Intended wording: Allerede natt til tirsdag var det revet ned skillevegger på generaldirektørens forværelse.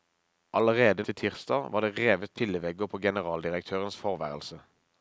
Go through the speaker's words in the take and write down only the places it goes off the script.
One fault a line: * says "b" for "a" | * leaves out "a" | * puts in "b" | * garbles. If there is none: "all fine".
* leaves out "natt"
* leaves out "ned"